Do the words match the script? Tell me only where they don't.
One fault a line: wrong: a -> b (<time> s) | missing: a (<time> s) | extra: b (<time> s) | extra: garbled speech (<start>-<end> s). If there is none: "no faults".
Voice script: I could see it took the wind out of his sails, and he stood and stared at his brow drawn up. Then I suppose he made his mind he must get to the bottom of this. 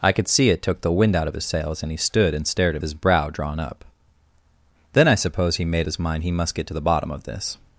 no faults